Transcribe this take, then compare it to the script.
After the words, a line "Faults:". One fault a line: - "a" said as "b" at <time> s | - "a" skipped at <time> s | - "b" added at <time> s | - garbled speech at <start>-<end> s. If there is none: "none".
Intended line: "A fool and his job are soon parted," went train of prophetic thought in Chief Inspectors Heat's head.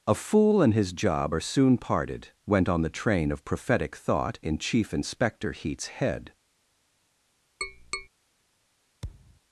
"A fool and his job are soon parted," went on the train of prophetic thought in Chief Inspector Heat's head.
Faults:
- "on the" added at 2.7 s
- "Inspectors" said as "Inspector" at 4.9 s